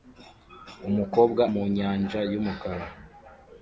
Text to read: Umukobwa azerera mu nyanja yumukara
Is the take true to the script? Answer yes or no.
no